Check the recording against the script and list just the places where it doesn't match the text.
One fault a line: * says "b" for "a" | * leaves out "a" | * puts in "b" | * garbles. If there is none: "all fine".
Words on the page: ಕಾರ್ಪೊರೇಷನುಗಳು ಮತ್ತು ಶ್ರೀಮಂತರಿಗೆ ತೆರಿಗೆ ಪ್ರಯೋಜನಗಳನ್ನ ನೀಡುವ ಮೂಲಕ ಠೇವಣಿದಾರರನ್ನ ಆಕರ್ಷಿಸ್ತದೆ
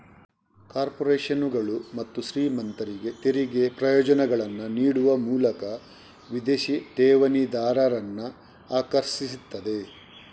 * puts in "ವಿದೇಶಿ"